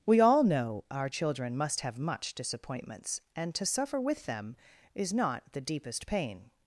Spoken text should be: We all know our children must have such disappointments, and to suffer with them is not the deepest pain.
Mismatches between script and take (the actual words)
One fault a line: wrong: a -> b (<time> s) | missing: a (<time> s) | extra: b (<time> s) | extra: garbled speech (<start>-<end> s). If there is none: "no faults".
wrong: such -> much (2.0 s)